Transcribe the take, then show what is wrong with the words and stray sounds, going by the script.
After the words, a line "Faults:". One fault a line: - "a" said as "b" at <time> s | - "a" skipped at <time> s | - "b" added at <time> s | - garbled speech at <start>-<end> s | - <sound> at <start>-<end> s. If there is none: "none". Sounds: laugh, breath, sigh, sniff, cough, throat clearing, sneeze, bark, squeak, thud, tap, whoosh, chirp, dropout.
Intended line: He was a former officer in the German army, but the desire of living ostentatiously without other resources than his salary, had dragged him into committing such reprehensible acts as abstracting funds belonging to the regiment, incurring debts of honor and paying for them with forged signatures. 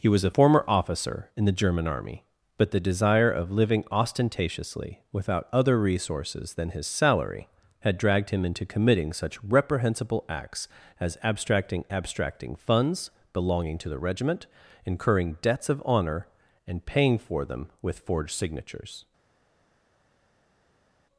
He was a former officer in the German army, but the desire of living ostentatiously without other resources than his salary, had dragged him into committing such reprehensible acts as abstracting abstracting funds belonging to the regiment, incurring debts of honor and paying for them with forged signatures.
Faults:
- "abstracting" added at 11.9 s